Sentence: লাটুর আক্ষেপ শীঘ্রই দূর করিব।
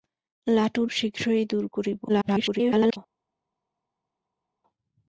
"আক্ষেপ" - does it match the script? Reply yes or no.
no